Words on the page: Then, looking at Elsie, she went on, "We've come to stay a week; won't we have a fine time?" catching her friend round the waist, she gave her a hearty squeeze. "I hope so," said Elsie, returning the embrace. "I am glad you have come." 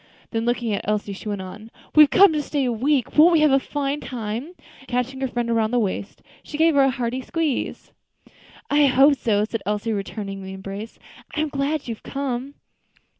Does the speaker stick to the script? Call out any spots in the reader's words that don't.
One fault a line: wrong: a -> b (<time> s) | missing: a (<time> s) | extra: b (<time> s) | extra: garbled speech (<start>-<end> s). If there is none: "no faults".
no faults